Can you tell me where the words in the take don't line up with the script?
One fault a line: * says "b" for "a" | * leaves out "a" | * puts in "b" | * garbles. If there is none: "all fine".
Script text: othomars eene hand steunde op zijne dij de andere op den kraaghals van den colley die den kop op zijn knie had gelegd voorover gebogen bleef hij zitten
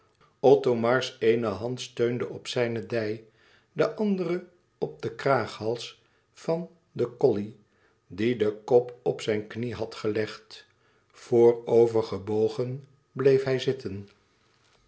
all fine